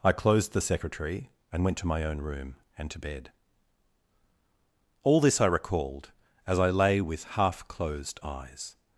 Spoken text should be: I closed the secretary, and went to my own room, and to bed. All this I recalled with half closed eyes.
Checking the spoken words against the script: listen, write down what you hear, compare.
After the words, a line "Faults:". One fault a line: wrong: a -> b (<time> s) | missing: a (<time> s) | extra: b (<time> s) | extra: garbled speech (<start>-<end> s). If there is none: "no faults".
I closed the secretary, and went to my own room, and to bed. All this I recalled as I lay with half closed eyes.
Faults:
extra: as I lay (6.5 s)